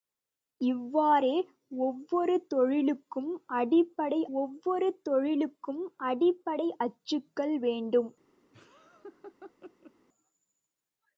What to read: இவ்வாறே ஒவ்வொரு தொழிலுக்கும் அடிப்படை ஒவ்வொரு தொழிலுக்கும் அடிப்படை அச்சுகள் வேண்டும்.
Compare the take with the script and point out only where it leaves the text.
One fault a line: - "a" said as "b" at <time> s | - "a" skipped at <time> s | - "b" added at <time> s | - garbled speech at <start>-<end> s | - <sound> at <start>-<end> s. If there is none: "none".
- laugh at 8.5-9.9 s